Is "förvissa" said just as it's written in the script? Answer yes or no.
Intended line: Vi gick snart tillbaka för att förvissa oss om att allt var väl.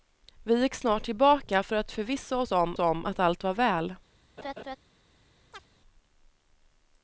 yes